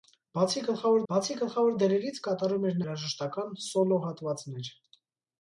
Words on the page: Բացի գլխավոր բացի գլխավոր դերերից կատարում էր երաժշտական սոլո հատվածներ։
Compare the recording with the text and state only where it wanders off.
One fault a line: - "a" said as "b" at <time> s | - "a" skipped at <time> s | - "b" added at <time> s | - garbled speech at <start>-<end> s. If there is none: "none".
none